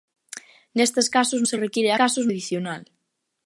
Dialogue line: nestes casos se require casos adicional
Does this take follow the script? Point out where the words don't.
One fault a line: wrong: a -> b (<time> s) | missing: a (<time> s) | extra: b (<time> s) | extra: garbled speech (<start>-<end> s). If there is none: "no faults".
no faults